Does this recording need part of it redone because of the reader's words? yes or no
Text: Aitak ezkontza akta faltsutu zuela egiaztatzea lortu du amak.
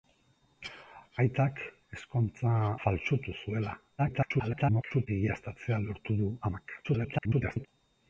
yes